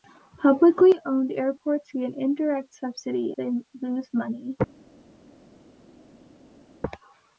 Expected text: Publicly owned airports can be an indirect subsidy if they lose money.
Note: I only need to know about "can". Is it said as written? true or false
false